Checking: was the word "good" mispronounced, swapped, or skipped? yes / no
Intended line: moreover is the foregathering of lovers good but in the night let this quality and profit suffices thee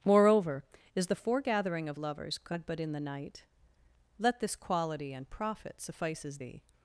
no